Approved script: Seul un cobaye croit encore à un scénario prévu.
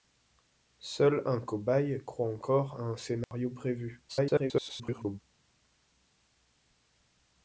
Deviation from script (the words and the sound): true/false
true